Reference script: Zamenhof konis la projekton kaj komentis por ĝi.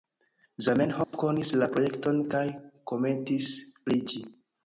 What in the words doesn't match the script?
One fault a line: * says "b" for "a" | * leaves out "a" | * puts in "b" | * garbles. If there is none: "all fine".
* says "pri" for "por"